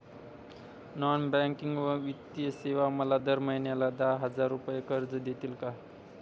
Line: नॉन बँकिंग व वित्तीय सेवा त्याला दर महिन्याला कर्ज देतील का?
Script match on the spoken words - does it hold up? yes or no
no